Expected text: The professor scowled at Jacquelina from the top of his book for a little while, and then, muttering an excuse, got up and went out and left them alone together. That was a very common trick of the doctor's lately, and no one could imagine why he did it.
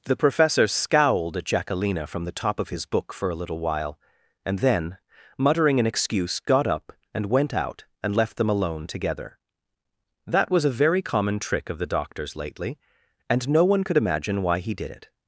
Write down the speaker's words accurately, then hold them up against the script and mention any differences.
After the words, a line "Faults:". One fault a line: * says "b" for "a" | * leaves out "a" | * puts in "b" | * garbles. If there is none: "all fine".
The professor scowled at Jacquelina from the top of his book for a little while, and then, muttering an excuse, got up and went out and left them alone together. That was a very common trick of the doctor's lately, and no one could imagine why he did it.
Faults:
all fine